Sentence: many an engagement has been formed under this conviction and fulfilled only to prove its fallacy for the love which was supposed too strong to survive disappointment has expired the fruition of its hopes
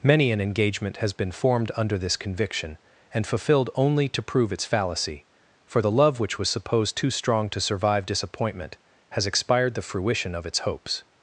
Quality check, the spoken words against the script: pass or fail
pass